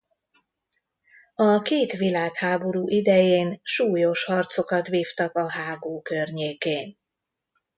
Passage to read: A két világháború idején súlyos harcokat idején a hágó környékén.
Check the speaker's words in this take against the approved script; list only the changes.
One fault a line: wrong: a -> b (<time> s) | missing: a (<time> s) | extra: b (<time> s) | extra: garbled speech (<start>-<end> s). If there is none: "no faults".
wrong: idején -> vívtak (4.9 s)